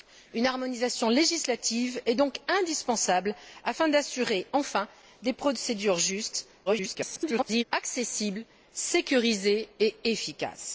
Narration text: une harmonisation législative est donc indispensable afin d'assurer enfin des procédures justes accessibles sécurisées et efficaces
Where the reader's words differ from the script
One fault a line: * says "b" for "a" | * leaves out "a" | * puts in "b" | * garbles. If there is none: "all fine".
* garbles